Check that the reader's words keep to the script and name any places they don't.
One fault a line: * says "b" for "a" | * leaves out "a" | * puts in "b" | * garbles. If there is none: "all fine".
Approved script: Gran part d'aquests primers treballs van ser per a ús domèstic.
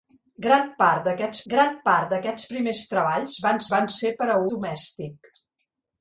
* puts in "gran part d'aquests"
* puts in "van"
* leaves out "ús"